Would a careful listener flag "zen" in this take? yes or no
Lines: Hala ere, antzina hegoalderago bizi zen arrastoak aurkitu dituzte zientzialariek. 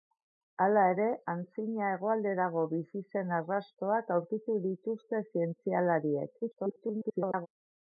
no